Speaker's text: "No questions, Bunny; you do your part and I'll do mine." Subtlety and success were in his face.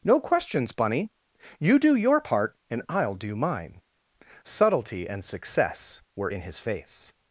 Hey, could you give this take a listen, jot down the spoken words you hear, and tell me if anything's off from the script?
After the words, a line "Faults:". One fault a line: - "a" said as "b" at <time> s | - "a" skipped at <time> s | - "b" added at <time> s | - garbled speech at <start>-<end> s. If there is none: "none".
"No questions, Bunny; you do your part and I'll do mine." Subtlety and success were in his face.
Faults:
none